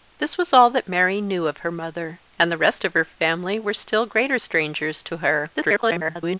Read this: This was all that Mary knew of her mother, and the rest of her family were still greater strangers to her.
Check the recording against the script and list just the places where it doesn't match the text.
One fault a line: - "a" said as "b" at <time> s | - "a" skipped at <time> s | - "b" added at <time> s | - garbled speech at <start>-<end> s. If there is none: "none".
- garbled speech at 5.5-6.4 s